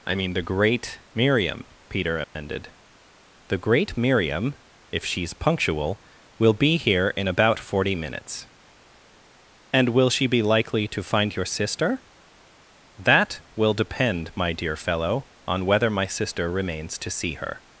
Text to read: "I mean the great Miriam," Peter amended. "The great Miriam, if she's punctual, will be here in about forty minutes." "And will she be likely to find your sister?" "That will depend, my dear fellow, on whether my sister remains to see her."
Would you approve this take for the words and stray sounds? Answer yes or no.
no